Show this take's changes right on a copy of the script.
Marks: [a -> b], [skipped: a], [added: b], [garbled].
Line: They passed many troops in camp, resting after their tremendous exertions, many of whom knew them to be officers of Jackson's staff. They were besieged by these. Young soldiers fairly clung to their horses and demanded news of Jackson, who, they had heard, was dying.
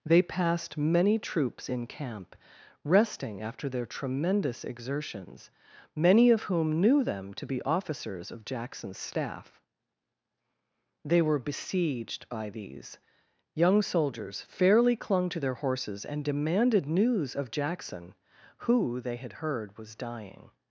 They passed many troops in camp, resting after their tremendous exertions, many of whom knew them to be officers of Jackson's staff. They were besieged by these. Young soldiers fairly clung to their horses and demanded news of Jackson, who, they had heard, was dying.